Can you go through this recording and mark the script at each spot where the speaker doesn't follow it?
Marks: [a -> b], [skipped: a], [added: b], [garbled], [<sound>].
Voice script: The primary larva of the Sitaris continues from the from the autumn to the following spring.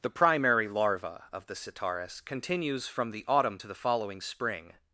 The primary larva of the Sitaris continues from the [skipped: from the] autumn to the following spring.